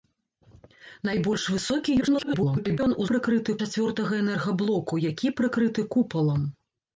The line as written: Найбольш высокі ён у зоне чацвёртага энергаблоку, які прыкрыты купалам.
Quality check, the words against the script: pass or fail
fail